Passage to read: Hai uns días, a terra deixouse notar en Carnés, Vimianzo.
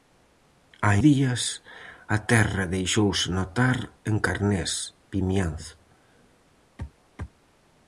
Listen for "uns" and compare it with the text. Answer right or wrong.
wrong